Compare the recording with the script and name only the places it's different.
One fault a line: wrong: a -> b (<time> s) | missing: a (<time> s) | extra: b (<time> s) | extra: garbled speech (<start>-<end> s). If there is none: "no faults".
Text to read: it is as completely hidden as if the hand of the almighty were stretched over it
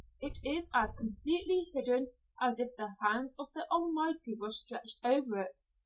no faults